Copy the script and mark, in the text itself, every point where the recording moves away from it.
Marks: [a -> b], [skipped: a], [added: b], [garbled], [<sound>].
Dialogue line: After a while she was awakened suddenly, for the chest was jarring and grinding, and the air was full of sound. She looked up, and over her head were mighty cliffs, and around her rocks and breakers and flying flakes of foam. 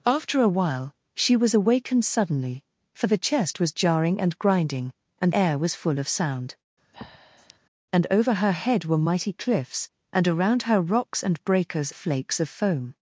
After a while she was awakened suddenly, for the chest was jarring and grinding, and [skipped: the] air was full of sound. [skipped: She looked up,] [breath] and over her head were mighty cliffs, and around her rocks and breakers [skipped: and flying] flakes of foam.